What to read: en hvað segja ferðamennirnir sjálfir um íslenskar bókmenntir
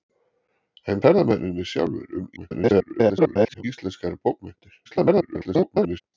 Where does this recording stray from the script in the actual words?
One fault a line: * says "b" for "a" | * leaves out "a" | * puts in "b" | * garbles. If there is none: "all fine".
* leaves out "hvað segja"
* garbles
* garbles